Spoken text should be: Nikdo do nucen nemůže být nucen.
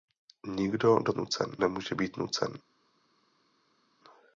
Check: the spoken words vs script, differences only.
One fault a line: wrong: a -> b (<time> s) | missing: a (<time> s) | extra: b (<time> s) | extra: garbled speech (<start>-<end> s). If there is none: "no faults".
no faults